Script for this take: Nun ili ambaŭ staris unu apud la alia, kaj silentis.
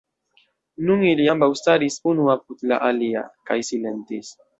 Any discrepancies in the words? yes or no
no